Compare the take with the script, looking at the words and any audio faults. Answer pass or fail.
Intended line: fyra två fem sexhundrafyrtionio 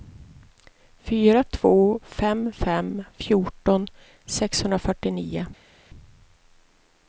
fail